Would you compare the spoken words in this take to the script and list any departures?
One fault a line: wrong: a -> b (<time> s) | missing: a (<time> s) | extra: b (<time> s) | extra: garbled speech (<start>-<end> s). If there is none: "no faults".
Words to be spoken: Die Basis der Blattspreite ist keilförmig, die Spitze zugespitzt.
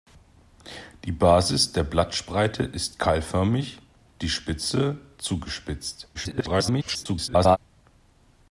extra: garbled speech (6.1-7.6 s)